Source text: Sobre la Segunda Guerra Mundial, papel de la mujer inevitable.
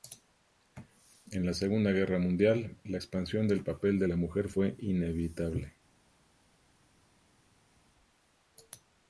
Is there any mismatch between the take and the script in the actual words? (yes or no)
yes